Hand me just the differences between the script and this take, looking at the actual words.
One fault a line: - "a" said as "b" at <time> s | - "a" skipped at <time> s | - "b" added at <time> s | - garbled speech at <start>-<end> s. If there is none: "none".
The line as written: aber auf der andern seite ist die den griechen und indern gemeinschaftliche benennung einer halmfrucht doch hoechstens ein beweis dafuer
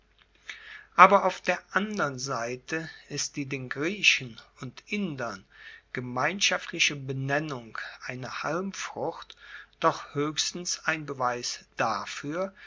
none